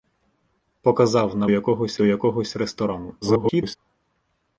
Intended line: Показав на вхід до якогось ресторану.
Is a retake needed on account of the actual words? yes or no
yes